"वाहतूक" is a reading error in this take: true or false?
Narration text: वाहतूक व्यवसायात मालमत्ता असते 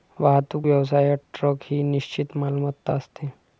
false